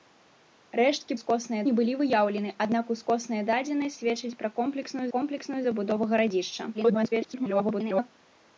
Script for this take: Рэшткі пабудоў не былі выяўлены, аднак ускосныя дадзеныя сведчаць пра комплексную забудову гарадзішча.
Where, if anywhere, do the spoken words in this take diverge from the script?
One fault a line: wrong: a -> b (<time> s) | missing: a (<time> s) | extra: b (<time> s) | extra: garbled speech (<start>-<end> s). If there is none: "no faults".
wrong: пабудоў -> ускосныя (1.2 s)
extra: комплексную (5.2 s)
extra: garbled speech (6.7-8.1 s)